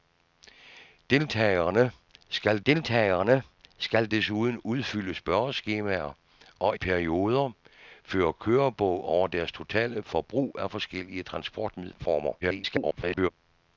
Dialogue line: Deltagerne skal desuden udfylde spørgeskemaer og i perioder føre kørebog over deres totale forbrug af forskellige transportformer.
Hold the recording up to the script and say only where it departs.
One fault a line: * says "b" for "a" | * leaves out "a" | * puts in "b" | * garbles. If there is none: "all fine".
* puts in "deltagerne skal"
* leaves out "i"
* garbles